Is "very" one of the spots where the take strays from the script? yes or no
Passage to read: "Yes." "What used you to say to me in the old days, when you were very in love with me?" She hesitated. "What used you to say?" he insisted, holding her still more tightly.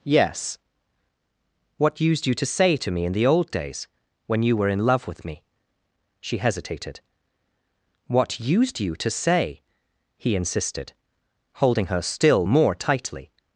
yes